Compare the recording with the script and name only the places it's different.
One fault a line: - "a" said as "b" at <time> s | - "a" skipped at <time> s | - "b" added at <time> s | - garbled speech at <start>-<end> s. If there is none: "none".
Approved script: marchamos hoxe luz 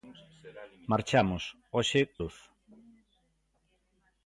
none